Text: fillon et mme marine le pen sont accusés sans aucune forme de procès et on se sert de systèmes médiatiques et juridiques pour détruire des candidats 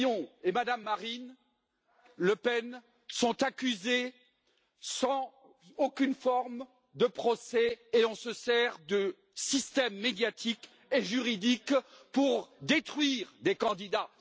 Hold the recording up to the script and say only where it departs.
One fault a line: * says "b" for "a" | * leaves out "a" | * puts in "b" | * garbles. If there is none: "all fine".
all fine